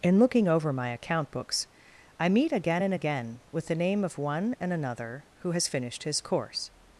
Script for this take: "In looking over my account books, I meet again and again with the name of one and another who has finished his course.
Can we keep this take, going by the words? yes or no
yes